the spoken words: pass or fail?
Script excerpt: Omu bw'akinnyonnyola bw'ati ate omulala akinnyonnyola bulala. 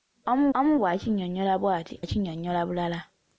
fail